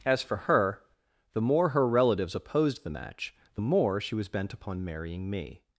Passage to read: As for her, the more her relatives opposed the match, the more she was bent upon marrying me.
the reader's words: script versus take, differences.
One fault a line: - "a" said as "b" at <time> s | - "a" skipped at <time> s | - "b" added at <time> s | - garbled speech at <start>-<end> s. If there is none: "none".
none